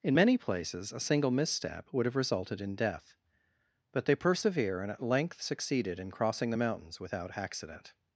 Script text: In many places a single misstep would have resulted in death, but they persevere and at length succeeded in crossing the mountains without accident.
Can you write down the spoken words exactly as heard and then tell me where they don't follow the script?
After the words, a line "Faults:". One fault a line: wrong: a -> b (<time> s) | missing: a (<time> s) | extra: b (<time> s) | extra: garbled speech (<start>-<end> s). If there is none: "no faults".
In many places a single misstep would have resulted in death, but they persevere and at length succeeded in crossing the mountains without accident.
Faults:
no faults